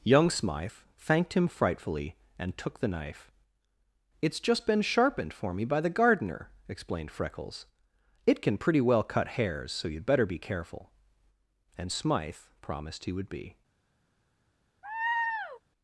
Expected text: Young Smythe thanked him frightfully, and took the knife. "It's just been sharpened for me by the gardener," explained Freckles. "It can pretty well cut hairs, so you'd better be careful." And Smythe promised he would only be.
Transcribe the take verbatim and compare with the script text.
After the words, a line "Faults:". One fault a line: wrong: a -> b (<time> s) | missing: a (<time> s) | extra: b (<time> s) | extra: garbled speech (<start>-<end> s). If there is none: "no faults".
Young Smythe thanked him frightfully, and took the knife. "It's just been sharpened for me by the gardener," explained Freckles. "It can pretty well cut hairs, so you'd better be careful." And Smythe promised he would be.
Faults:
missing: only (13.3 s)